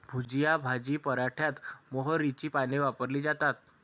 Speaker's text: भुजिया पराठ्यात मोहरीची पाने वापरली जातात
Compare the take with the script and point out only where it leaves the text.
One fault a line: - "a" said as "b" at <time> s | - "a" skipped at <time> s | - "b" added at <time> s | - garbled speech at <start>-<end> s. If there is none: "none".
- "भाजी" added at 0.6 s